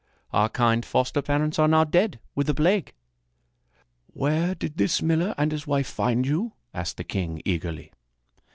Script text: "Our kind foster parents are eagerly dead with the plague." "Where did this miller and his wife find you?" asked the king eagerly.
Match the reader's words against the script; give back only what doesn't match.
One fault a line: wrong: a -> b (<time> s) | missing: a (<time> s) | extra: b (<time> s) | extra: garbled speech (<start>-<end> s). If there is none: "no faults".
wrong: eagerly -> now (1.7 s)